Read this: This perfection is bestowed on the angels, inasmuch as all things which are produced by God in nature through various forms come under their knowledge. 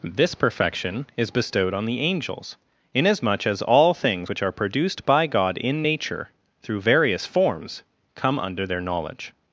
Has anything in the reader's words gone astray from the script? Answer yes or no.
no